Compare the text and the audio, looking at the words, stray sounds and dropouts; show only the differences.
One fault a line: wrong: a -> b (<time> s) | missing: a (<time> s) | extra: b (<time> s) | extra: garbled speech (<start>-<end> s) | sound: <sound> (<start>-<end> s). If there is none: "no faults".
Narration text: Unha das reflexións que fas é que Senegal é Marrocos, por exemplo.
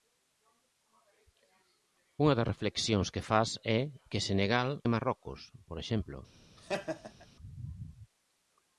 sound: laugh (6.6-7.3 s)